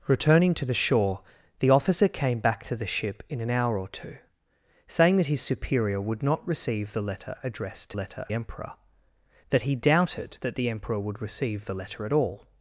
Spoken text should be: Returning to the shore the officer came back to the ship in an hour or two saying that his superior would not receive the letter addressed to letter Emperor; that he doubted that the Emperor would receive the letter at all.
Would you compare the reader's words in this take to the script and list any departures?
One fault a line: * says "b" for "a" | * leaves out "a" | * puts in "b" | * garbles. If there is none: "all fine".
all fine